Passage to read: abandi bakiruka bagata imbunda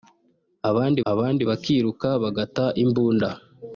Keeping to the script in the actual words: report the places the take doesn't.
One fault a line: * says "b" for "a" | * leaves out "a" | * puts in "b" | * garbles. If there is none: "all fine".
* puts in "abandi"